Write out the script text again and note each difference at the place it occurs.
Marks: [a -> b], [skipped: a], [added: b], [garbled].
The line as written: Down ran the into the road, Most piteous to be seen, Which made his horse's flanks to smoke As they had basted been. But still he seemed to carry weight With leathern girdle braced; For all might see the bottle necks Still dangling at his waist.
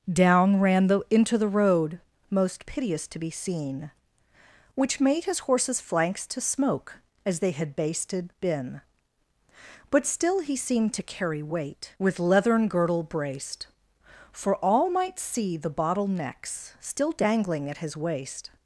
Down ran the into the road, Most piteous to be seen, Which made his horse's flanks to smoke As they had basted been. But still he seemed to carry weight With leathern girdle braced; For all might see the bottle necks Still dangling at his waist.